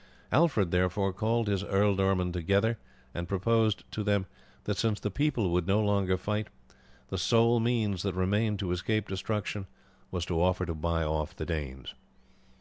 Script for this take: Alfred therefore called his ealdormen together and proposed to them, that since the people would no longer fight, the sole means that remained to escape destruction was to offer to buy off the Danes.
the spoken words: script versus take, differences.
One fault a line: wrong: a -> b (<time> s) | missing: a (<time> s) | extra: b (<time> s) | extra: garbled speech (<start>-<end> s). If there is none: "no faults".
no faults